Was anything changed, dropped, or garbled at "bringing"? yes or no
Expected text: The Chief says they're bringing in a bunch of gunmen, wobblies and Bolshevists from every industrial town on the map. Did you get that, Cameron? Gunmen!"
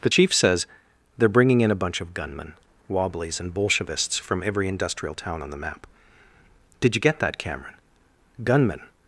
no